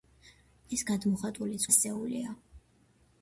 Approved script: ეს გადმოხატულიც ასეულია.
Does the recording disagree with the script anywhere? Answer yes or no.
no